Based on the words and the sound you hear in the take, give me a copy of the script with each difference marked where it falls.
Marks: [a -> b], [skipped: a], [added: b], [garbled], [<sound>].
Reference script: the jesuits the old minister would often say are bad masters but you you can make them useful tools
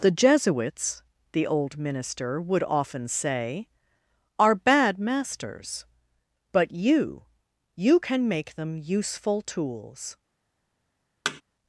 the jesuits the old minister would often say are bad masters but you you can make them useful tools [thud]